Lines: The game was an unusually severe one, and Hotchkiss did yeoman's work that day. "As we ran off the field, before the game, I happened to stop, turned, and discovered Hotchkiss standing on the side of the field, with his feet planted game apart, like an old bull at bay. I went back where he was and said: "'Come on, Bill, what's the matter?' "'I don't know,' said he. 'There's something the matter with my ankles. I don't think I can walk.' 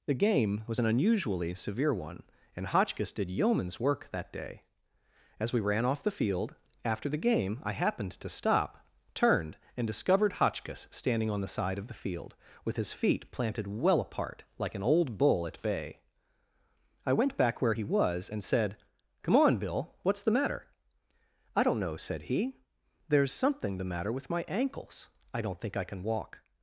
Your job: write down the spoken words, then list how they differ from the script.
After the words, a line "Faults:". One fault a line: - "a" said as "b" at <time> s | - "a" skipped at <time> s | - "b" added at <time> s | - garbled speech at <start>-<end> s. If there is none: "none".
The game was an unusually severe one, and Hotchkiss did yeoman's work that day. "As we ran off the field, after the game, I happened to stop, turned, and discovered Hotchkiss standing on the side of the field, with his feet planted well apart, like an old bull at bay. I went back where he was and said: "'Come on, Bill, what's the matter?' "'I don't know,' said he. 'There's something the matter with my ankles. I don't think I can walk.'
Faults:
- "before" said as "after" at 6.8 s
- "game" said as "well" at 13.7 s